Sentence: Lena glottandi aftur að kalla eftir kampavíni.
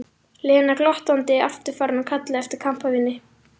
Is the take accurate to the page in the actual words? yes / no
no